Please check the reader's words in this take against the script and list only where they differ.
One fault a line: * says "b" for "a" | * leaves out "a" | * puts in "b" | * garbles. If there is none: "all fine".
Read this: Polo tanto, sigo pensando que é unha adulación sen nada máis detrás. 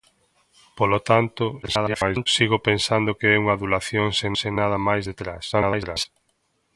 * garbles
* puts in "sen"
* garbles